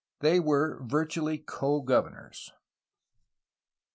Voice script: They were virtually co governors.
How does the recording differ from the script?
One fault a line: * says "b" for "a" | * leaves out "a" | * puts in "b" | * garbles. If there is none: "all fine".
all fine